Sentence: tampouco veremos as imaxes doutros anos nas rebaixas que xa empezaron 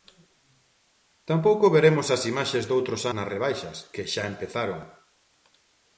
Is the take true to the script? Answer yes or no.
no